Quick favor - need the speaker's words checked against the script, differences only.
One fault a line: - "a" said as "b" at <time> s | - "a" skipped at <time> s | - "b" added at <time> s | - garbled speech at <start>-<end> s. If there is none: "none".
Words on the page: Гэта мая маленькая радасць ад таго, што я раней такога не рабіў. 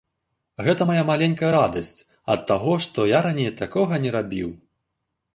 none